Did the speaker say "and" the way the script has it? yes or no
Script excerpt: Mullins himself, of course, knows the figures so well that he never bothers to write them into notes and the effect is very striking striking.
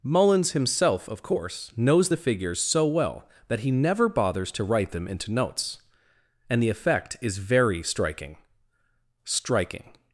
yes